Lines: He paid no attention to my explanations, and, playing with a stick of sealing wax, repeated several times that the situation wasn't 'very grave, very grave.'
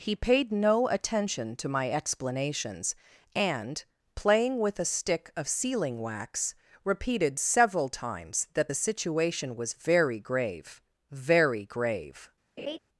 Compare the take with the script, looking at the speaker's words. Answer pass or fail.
fail